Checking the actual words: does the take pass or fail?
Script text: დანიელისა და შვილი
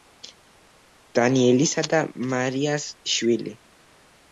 fail